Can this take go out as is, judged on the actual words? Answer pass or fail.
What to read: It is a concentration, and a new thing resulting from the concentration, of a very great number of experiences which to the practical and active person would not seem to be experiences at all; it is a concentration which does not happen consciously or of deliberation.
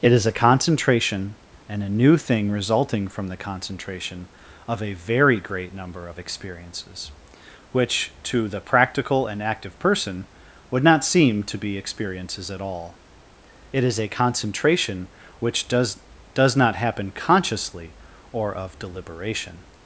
fail